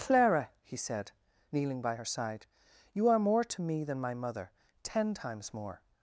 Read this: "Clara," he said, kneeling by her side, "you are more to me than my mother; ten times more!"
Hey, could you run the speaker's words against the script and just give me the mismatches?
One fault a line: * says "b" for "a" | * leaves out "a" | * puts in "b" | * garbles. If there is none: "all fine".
all fine